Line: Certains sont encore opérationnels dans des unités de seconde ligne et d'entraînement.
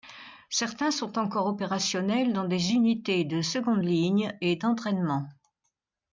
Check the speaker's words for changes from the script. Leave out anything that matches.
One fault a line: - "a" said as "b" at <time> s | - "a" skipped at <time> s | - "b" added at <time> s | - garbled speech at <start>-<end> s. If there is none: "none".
none